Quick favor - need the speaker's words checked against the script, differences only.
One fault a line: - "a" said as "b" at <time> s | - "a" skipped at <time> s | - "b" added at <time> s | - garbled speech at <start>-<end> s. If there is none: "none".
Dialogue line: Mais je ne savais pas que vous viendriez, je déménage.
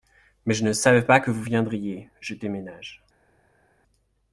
none